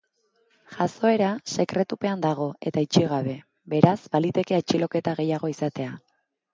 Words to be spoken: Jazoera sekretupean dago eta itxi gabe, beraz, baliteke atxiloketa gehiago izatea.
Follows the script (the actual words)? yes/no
yes